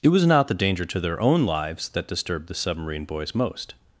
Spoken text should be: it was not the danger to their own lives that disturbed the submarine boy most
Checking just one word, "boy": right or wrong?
wrong